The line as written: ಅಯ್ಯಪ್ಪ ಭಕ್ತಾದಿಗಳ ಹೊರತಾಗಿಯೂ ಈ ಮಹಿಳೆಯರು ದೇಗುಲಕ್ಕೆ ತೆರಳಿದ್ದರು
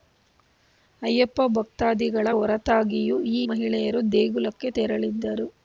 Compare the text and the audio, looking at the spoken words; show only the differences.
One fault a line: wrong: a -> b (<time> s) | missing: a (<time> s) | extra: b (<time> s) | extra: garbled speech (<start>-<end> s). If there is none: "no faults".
no faults